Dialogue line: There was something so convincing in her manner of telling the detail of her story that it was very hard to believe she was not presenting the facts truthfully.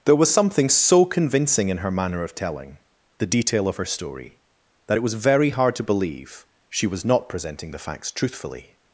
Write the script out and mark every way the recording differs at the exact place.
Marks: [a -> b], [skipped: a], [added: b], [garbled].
There was something so convincing in her manner of telling the detail of her story that it was very hard to believe she was not presenting the facts truthfully.